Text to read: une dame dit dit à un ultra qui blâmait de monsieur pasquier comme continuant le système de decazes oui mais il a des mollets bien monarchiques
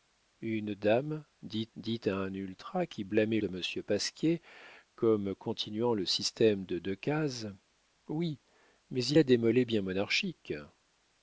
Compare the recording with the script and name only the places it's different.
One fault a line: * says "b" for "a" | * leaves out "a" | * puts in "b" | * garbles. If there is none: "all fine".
all fine